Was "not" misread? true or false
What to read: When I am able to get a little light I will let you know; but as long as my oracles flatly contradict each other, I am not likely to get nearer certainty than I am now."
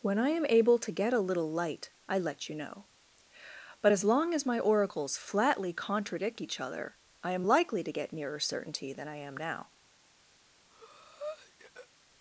true